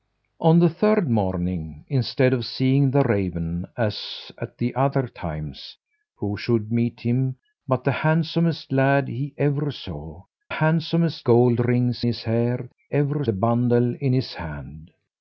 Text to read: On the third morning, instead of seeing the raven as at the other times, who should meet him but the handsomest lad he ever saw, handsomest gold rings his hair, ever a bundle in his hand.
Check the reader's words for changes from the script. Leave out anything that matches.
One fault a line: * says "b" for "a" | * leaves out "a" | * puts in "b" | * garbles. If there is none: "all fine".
all fine